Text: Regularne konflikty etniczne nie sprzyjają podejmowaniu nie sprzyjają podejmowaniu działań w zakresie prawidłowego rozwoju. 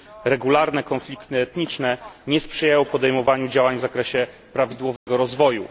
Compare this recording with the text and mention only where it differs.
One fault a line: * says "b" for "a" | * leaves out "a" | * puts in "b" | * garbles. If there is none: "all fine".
* leaves out "nie sprzyjają podejmowaniu"